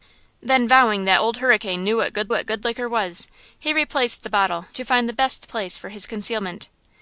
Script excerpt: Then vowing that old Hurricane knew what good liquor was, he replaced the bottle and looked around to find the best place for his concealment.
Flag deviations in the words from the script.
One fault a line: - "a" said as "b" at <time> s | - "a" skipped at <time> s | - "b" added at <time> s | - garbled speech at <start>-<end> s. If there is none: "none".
- "what good" added at 2.3 s
- "and looked around" skipped at 4.6 s